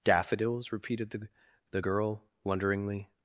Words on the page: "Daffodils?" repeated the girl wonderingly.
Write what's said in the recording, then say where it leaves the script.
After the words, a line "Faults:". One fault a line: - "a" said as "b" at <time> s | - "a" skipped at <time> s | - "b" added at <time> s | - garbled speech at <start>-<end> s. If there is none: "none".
"Daffodils?" repeated the the girl wonderingly.
Faults:
- "the" added at 1.7 s